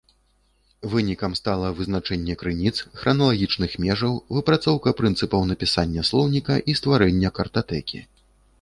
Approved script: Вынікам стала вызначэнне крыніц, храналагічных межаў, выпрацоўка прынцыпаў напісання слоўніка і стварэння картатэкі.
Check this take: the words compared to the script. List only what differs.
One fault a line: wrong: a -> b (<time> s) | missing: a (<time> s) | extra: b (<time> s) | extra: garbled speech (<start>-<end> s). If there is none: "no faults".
no faults